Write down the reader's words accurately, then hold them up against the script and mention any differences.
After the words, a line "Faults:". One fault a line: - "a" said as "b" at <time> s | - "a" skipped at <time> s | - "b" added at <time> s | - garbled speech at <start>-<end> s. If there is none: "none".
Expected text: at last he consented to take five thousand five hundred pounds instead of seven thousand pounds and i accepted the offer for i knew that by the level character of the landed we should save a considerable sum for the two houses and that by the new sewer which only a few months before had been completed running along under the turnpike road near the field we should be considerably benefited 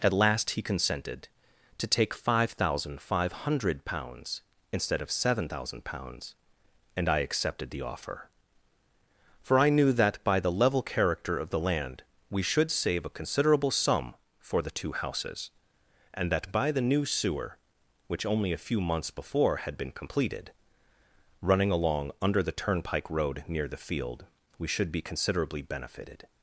at last he consented to take five thousand five hundred pounds instead of seven thousand pounds and i accepted the offer for i knew that by the level character of the land we should save a considerable sum for the two houses and that by the new sewer which only a few months before had been completed running along under the turnpike road near the field we should be considerably benefited
Faults:
- "landed" said as "land" at 11.6 s